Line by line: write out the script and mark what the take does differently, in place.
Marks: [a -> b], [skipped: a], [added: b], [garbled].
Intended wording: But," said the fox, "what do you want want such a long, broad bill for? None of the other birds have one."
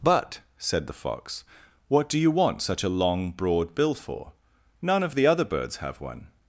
But," said the fox, "what do you want [skipped: want] such a long, broad bill for? None of the other birds have one."